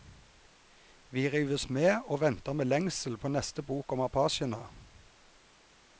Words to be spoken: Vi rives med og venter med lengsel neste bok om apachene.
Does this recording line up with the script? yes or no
no